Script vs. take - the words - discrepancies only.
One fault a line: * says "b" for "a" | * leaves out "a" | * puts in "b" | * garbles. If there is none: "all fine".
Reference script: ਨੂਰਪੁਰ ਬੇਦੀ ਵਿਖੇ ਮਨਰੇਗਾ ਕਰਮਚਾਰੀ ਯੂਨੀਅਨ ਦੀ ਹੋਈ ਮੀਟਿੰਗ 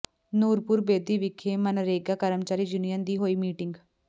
all fine